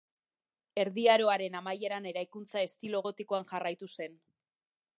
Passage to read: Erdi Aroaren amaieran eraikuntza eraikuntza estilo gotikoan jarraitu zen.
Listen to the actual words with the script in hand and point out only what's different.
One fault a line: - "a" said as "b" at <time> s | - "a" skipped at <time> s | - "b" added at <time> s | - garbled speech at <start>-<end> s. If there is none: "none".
- "eraikuntza" skipped at 2.6 s